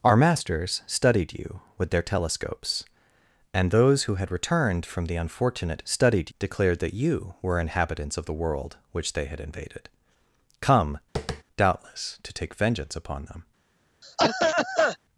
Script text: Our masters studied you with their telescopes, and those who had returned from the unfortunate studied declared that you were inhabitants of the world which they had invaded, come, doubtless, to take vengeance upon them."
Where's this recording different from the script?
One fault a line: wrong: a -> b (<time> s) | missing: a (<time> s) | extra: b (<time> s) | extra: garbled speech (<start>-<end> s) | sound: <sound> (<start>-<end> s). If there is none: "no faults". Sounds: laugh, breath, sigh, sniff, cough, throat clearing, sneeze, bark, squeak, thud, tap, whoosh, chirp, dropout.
sound: tap (11.2-11.4 s)
sound: cough (14.0-15.0 s)